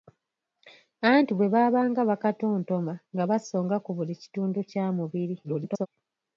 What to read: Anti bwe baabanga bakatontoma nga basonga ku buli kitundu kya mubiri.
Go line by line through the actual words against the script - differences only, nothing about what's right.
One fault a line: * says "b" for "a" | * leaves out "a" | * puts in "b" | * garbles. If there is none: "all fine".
* garbles